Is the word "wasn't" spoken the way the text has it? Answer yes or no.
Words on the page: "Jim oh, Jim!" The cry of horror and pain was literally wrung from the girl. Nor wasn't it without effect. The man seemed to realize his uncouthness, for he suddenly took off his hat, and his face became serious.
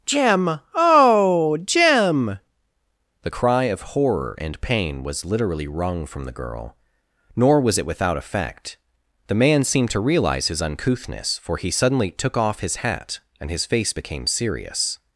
no